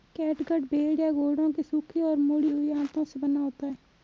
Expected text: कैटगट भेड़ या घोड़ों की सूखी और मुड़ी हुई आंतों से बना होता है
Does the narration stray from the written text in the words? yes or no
no